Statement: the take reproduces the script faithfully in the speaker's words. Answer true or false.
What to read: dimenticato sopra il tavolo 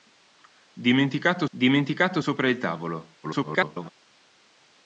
false